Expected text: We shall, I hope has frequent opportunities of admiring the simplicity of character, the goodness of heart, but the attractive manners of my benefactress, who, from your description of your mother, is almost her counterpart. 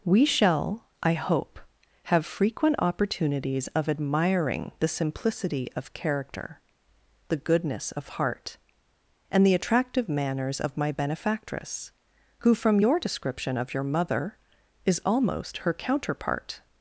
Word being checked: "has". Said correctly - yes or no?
no